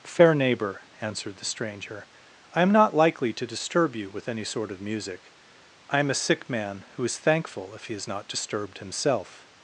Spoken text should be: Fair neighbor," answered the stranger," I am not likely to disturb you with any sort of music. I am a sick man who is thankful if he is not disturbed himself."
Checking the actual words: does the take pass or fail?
pass